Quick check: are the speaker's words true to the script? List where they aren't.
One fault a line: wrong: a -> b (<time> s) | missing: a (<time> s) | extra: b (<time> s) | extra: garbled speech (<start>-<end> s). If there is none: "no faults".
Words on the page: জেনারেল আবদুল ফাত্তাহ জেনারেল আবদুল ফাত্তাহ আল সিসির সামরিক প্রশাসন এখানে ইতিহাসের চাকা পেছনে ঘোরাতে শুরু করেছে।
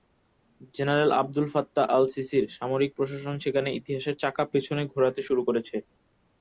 missing: জেনারেল আবদুল ফাত্তাহ (1.9 s)
wrong: এখানে -> সেখানে (3.4 s)